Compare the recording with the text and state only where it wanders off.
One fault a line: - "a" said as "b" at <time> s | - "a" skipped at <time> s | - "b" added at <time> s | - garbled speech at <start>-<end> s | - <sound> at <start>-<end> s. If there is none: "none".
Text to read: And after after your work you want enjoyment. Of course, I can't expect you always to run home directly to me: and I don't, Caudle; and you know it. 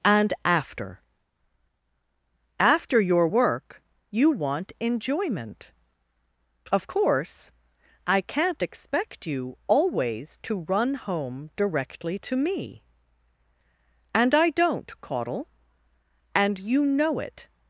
none